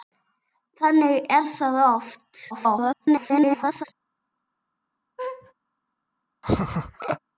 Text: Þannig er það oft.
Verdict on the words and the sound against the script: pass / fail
fail